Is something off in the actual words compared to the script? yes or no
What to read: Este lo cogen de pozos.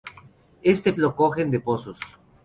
no